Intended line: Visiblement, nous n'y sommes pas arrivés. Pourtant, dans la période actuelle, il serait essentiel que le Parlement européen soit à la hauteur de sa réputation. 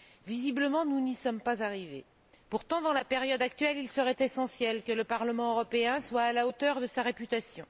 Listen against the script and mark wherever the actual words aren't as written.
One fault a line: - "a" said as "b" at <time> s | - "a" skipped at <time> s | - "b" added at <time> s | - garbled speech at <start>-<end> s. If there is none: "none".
none